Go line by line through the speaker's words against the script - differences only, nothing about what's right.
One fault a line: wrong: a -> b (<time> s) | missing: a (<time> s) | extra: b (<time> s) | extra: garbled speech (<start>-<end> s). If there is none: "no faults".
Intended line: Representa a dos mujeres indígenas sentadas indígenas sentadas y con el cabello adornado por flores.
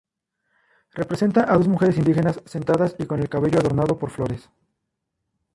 missing: indígenas sentadas (3.0 s)